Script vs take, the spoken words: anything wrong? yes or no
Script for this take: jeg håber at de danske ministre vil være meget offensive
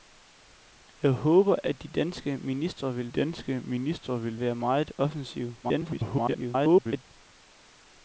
yes